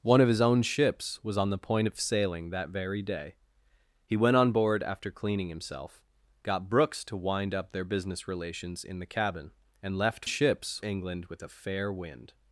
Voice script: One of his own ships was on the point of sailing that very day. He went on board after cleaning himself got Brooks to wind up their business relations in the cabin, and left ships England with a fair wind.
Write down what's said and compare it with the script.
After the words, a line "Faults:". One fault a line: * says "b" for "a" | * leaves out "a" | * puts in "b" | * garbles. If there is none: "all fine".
One of his own ships was on the point of sailing that very day. He went on board after cleaning himself got Brooks to wind up their business relations in the cabin, and left ships England with a fair wind.
Faults:
all fine